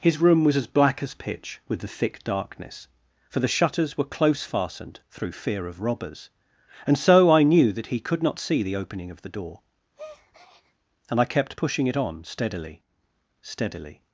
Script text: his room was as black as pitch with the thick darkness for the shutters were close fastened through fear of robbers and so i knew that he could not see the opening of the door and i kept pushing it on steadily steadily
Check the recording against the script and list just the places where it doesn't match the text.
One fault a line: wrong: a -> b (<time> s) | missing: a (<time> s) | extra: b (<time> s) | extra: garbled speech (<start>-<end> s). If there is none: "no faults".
no faults